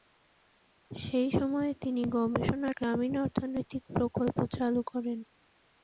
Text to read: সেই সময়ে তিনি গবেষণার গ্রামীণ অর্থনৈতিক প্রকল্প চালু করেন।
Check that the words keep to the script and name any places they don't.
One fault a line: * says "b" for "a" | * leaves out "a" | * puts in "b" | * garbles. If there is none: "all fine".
all fine